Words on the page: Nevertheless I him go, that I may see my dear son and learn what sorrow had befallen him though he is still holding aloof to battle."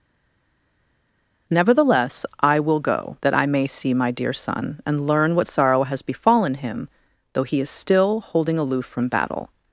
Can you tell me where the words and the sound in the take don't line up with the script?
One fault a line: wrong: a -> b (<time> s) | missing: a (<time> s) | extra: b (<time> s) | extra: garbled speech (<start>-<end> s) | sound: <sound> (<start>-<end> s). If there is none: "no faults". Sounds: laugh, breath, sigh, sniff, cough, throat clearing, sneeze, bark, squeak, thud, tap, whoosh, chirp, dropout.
wrong: him -> will (2.6 s)
wrong: had -> has (5.8 s)
wrong: to -> from (8.8 s)